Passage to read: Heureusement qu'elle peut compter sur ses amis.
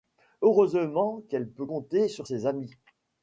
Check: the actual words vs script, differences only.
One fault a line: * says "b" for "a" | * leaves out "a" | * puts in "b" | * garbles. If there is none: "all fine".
all fine